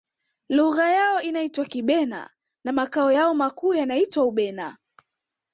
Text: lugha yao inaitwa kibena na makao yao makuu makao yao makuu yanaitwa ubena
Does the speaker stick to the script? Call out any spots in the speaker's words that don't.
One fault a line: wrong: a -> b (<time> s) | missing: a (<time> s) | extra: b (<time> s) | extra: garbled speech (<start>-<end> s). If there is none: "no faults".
missing: makao yao makuu (3.7 s)